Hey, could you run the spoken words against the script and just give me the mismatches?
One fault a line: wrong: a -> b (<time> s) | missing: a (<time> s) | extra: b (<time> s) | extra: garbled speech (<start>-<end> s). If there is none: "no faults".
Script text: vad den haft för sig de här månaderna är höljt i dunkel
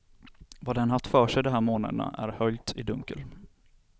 no faults